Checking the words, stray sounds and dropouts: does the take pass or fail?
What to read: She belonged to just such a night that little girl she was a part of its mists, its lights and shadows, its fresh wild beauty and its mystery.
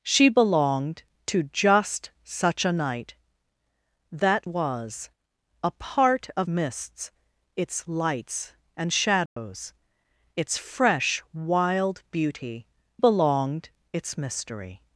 fail